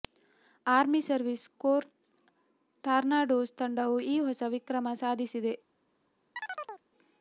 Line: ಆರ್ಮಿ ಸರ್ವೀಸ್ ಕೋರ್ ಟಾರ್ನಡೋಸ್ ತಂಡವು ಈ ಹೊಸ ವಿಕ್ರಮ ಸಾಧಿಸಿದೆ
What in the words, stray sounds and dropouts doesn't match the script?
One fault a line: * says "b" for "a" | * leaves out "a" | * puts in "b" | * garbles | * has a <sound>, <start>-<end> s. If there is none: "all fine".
* has a chirp, 6.4-6.8 s